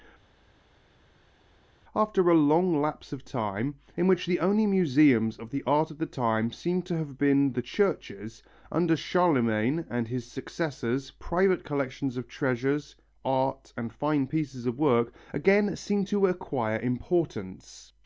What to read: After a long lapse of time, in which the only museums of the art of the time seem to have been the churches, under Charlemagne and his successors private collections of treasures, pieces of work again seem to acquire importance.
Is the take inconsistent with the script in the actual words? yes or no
yes